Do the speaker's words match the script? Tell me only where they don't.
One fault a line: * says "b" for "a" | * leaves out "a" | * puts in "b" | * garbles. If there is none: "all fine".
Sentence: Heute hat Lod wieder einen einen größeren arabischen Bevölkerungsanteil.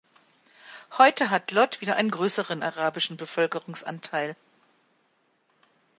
* leaves out "einen"